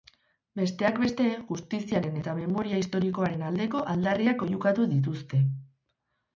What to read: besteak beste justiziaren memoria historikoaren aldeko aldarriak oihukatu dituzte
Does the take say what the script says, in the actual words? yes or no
no